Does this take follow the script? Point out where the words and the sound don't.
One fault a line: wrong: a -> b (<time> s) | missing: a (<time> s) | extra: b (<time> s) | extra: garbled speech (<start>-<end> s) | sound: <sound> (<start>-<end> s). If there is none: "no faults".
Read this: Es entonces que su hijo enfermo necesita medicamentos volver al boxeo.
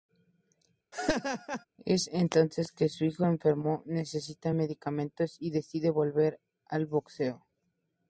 sound: laugh (0.9-1.6 s)
extra: y decide (5.4 s)